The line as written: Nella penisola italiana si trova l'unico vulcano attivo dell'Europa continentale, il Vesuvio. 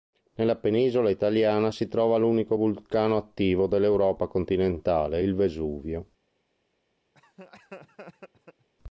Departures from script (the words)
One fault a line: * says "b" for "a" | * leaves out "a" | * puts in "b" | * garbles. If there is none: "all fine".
all fine